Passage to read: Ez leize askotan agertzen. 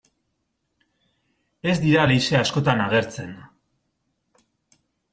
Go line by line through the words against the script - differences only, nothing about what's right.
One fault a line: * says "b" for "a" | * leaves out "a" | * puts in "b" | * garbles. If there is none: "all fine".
* puts in "dira"